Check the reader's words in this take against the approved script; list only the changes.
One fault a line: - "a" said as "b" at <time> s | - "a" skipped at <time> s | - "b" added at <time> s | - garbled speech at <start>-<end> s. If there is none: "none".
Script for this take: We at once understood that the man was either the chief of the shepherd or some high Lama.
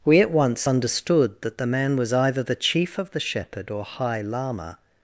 - "some" skipped at 3.8 s